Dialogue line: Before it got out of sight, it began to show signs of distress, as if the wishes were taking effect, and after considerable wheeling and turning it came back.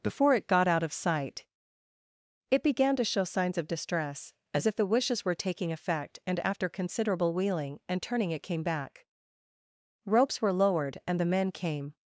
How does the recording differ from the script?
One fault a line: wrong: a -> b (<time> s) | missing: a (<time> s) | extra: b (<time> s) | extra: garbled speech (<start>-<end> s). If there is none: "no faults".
extra: Ropes were lowered and the men came (10.1 s)